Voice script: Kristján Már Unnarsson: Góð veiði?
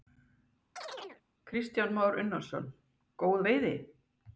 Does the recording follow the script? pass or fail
pass